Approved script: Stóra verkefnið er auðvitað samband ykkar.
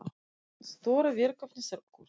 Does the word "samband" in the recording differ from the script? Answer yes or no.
yes